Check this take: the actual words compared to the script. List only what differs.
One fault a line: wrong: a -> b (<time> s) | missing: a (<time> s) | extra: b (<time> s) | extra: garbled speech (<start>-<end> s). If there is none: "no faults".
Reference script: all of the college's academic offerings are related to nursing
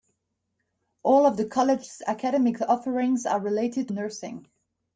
missing: to (3.9 s)